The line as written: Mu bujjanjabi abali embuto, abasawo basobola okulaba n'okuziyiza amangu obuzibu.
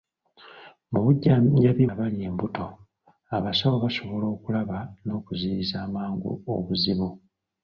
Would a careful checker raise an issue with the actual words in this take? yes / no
no